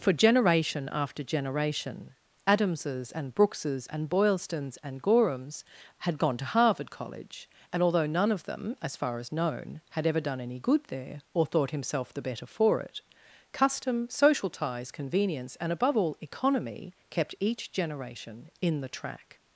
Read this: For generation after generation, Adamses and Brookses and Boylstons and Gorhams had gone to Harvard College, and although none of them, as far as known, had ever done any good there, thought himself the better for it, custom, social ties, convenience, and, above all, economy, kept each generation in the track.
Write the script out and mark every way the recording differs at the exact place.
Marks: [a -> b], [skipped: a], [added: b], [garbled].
For generation after generation, Adamses and Brookses and Boylstons and Gorhams had gone to Harvard College, and although none of them, as far as known, had ever done any good there, [added: or] thought himself the better for it, custom, social ties, convenience, and, above all, economy, kept each generation in the track.